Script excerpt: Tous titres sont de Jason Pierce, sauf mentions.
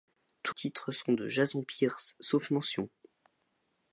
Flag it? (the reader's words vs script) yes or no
no